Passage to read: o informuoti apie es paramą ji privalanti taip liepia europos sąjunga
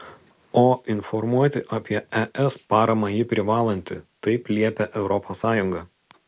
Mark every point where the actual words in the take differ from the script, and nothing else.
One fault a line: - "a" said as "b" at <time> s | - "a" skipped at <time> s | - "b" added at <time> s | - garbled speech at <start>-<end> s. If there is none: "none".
none